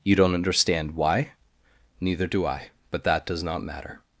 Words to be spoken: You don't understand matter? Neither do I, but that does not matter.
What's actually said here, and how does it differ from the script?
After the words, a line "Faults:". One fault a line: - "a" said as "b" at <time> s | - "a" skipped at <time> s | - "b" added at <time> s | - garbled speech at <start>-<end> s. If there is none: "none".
You don't understand why? Neither do I, but that does not matter.
Faults:
- "matter" said as "why" at 0.9 s